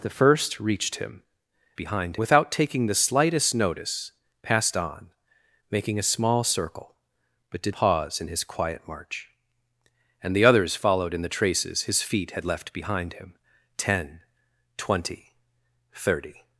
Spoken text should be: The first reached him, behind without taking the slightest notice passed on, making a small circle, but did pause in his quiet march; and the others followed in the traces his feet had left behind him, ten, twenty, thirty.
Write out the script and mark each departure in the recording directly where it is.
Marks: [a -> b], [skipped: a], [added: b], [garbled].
The first reached him, behind without taking the slightest notice passed on, making a small circle, but did pause in his quiet march; and the others followed in the traces his feet had left behind him, ten, twenty, thirty.